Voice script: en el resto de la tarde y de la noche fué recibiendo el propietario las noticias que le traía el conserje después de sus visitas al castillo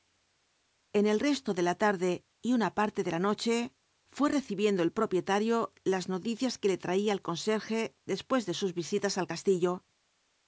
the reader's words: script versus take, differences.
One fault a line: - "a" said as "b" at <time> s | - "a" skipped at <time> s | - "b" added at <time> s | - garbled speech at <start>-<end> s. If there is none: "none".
- "una parte" added at 2.5 s